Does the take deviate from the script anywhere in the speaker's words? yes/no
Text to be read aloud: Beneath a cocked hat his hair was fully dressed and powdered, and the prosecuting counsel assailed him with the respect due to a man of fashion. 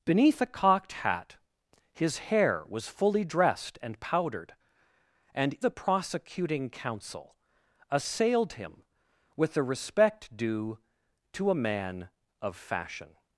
no